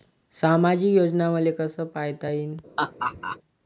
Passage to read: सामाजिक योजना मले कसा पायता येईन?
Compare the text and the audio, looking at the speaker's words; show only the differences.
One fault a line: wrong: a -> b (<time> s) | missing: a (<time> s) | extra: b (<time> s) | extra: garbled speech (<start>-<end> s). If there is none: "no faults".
no faults